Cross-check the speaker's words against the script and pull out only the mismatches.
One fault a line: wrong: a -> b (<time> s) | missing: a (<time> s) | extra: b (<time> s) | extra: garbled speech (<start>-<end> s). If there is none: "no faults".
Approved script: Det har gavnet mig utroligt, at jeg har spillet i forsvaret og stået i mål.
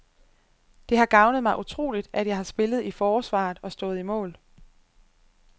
no faults